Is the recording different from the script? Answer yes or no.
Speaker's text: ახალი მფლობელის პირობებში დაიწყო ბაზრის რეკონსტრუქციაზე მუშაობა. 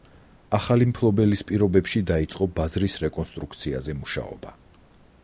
no